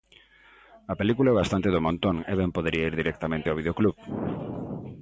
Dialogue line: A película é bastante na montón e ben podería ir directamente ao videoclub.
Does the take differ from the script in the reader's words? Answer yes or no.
yes